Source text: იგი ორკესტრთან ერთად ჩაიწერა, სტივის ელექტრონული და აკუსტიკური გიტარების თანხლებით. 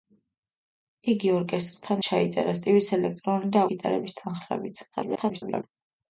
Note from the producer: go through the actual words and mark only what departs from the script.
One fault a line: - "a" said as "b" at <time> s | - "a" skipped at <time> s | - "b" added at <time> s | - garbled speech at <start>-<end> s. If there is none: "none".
- "ერთად" skipped at 2.0 s
- "აკუსტიკური" skipped at 3.6 s
- garbled speech at 4.9-5.6 s